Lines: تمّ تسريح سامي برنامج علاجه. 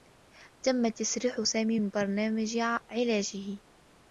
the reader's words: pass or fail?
fail